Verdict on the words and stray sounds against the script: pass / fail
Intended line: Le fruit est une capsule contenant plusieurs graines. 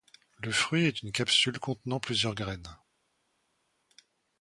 pass